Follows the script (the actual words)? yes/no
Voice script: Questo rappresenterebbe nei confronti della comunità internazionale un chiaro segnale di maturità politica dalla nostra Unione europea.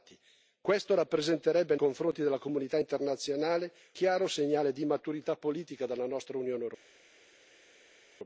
no